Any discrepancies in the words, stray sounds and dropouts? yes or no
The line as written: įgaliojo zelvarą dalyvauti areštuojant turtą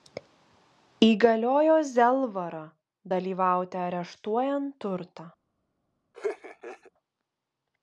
yes